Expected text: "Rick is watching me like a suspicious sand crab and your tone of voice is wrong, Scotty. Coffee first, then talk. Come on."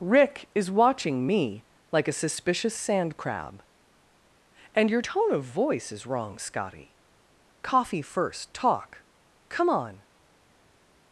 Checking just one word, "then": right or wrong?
wrong